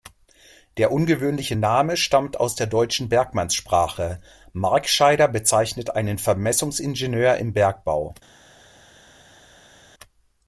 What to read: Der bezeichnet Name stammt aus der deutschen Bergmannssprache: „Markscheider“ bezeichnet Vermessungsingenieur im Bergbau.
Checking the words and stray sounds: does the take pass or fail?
fail